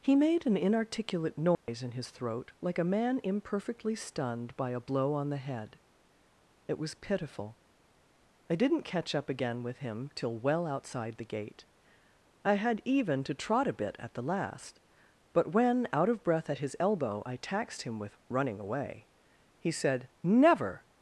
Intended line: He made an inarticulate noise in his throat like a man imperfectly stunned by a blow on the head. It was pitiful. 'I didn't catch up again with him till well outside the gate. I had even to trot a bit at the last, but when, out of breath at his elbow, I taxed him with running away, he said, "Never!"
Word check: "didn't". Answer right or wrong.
right